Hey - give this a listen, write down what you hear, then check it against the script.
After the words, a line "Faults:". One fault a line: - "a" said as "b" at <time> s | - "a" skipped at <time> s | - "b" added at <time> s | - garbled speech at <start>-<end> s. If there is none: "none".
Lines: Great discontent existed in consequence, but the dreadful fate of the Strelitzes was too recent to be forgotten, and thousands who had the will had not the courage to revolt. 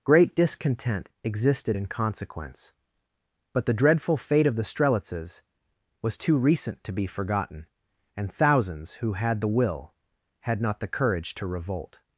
Great discontent existed in consequence, but the dreadful fate of the Strelitzes was too recent to be forgotten, and thousands who had the will had not the courage to revolt.
Faults:
none